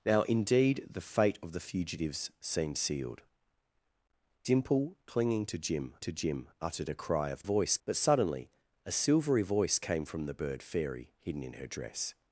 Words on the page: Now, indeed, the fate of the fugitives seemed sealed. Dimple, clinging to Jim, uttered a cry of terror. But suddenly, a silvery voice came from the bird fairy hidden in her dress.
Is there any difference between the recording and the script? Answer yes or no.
yes